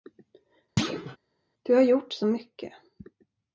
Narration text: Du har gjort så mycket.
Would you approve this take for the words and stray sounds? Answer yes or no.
no